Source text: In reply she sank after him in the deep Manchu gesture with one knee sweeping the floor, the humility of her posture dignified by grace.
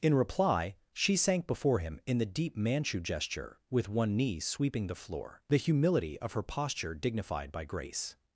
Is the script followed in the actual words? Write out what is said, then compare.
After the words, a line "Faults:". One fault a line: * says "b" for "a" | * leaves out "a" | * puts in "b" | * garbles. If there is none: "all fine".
In reply she sank before him in the deep Manchu gesture with one knee sweeping the floor, the humility of her posture dignified by grace.
Faults:
* says "before" for "after"